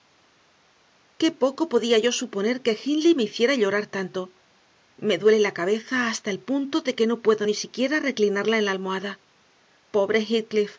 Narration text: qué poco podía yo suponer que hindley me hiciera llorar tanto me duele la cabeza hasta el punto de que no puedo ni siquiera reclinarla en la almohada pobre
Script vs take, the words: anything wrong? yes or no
no